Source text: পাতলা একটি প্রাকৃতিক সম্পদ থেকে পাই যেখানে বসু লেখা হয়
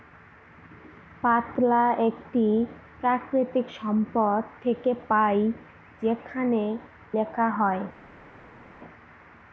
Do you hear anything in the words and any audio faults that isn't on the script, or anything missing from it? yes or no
yes